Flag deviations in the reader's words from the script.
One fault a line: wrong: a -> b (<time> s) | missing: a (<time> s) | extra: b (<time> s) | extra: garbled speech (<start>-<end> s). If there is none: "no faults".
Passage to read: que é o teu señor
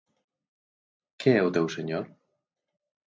no faults